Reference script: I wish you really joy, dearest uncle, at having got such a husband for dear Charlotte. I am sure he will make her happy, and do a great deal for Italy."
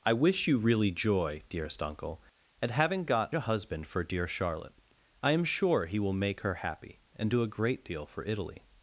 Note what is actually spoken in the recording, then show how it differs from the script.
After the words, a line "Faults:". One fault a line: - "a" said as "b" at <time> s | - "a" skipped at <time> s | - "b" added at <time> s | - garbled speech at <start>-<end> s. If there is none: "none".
I wish you really joy, dearest uncle, at having got a husband for dear Charlotte. I am sure he will make her happy, and do a great deal for Italy."
Faults:
- "such" skipped at 3.4 s